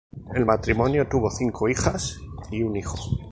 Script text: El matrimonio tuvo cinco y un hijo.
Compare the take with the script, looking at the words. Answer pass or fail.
fail